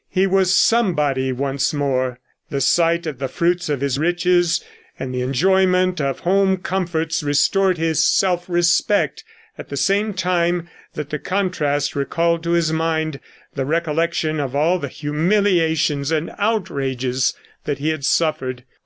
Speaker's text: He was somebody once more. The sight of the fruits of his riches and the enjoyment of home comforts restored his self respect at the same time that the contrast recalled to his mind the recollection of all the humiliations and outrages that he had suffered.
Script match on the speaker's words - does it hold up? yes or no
yes